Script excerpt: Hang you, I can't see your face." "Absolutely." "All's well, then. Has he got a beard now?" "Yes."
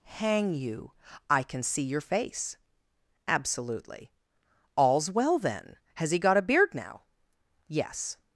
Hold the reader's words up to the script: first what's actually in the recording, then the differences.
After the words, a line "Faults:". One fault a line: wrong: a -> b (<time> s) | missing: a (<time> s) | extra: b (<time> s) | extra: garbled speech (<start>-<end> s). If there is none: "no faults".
Hang you, I can see your face." "Absolutely." "All's well, then. Has he got a beard now?" "Yes."
Faults:
wrong: can't -> can (1.4 s)